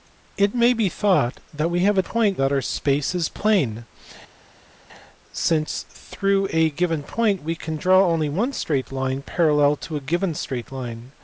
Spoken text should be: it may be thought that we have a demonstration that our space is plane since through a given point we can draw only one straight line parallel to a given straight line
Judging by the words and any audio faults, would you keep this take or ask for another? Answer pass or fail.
fail